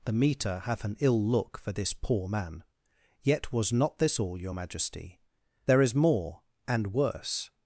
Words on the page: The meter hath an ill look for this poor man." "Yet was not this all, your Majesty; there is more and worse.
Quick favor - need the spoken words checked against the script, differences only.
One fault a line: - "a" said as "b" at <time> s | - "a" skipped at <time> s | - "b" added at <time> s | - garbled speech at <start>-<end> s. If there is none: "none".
none